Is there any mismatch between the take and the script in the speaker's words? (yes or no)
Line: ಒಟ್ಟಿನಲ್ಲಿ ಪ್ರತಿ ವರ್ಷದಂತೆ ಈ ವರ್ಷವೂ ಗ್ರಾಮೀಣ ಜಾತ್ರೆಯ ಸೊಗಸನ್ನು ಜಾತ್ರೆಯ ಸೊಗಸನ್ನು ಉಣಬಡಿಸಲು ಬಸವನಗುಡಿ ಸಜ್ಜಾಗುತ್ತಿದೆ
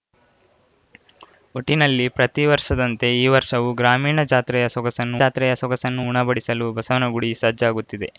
no